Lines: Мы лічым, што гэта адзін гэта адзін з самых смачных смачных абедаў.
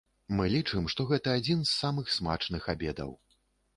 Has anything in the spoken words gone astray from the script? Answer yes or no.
yes